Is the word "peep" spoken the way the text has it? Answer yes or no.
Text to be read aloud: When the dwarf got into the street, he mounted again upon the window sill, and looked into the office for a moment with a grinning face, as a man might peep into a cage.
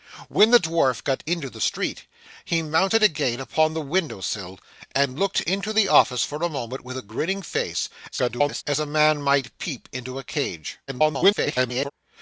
yes